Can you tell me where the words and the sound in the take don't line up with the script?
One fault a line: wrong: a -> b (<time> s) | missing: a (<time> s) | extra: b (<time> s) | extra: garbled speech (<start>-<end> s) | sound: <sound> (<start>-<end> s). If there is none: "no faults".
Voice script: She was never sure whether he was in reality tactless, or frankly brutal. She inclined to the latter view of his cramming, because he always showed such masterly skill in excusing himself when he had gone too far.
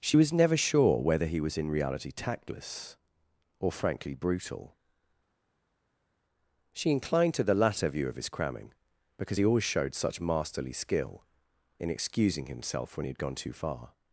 no faults